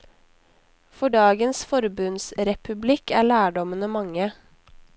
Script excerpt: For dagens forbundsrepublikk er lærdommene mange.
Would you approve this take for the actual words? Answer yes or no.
yes